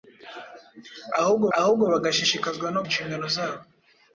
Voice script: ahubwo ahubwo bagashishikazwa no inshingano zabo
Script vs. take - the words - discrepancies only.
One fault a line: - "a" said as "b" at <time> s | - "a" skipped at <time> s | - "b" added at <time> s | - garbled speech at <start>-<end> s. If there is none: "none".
none